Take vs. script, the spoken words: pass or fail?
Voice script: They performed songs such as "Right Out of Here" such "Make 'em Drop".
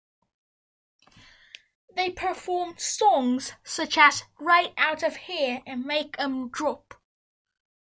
fail